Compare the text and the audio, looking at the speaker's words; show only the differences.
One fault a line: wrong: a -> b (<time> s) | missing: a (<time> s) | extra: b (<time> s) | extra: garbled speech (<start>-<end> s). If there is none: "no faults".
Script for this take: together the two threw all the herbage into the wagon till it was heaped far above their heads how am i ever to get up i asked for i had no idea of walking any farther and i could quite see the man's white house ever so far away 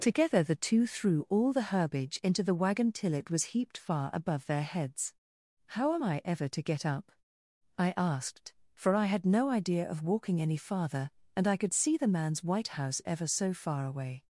missing: quite (11.7 s)